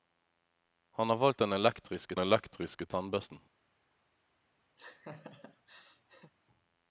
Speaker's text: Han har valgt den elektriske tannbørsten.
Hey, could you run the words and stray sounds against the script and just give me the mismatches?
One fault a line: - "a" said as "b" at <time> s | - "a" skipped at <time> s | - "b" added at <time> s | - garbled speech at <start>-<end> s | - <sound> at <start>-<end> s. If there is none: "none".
- "elektriske" added at 2.2 s
- laugh at 4.8-6.3 s